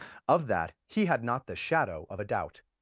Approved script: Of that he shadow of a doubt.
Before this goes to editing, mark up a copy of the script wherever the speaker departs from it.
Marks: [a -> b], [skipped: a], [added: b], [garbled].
Of that he [added: had not the] shadow of a doubt.